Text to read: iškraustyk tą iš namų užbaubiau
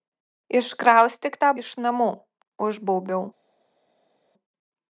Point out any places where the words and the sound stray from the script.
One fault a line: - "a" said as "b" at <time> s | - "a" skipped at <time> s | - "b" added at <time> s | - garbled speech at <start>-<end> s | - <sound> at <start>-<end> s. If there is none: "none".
none